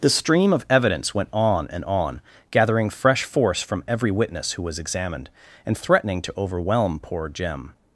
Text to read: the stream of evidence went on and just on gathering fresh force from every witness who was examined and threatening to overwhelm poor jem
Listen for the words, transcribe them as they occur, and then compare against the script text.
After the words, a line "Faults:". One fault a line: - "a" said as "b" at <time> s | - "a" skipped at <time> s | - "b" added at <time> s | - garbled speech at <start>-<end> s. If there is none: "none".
the stream of evidence went on and on gathering fresh force from every witness who was examined and threatening to overwhelm poor jem
Faults:
- "just" skipped at 1.9 s